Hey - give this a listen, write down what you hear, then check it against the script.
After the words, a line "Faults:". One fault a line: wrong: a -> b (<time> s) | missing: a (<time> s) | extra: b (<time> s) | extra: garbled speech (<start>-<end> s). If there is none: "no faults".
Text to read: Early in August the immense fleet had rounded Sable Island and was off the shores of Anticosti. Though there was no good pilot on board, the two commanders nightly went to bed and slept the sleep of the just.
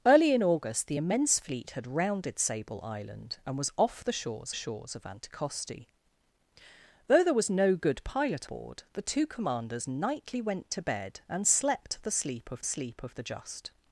Early in August the immense fleet had rounded Sable Island and was off the shores shores of Anticosti. Though there was no good pilot board, the two commanders nightly went to bed and slept the sleep of sleep of the just.
Faults:
extra: shores (4.5 s)
missing: on (8.5 s)
extra: sleep of (12.6 s)